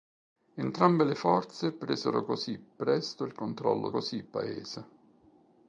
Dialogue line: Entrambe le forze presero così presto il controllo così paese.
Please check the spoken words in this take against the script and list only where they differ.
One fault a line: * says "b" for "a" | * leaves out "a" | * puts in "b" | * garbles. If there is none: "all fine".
all fine